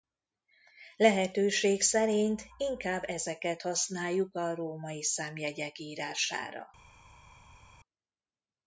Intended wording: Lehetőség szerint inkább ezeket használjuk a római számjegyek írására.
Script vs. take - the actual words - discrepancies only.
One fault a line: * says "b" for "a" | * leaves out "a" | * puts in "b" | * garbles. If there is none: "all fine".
all fine